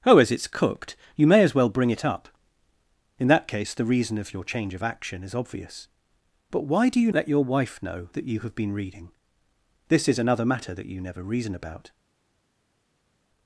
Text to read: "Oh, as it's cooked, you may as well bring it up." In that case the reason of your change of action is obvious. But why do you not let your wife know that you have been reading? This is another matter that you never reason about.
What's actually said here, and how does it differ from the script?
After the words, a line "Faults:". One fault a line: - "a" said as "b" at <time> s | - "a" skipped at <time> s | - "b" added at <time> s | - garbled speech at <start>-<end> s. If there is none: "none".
"Oh, as it's cooked, you may as well bring it up." In that case the reason of your change of action is obvious. But why do you let your wife know that you have been reading? This is another matter that you never reason about.
Faults:
- "not" skipped at 7.1 s